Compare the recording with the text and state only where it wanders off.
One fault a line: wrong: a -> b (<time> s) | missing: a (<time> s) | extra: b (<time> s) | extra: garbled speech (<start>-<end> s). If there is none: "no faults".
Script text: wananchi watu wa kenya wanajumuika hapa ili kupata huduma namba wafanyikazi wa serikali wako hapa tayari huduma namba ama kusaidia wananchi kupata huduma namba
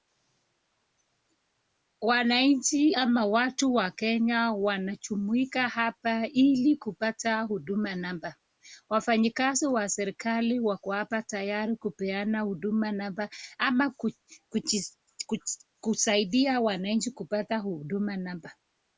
extra: ama (2.9 s)
extra: kupeana (11.8 s)